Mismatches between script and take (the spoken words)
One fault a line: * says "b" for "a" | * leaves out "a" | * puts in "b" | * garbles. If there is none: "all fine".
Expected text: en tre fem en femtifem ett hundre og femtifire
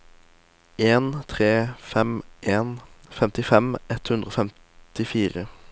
all fine